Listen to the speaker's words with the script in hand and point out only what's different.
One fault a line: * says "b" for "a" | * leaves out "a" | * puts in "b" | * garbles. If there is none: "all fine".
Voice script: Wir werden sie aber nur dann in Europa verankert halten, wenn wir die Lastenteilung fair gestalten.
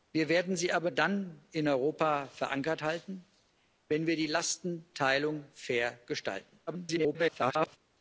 * leaves out "nur"
* garbles